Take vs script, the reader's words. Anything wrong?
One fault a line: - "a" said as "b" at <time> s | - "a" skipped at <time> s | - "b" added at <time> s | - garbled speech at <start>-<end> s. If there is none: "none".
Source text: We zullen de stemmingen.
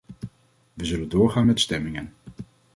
- "doorgaan met" added at 1.1 s